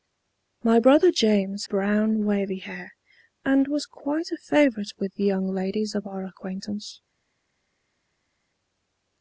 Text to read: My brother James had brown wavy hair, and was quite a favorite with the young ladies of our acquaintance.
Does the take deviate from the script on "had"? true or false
true